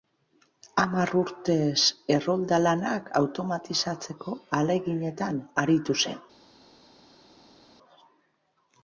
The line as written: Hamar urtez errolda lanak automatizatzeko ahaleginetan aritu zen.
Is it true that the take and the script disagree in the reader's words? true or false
false